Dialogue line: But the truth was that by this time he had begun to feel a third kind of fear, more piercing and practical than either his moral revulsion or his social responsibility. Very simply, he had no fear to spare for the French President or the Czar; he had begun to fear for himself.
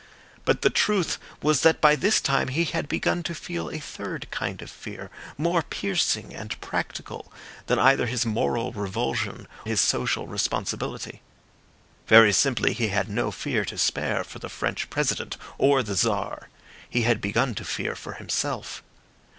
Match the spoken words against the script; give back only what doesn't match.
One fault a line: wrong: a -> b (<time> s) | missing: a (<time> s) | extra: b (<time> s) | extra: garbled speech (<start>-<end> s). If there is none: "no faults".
missing: or (9.5 s)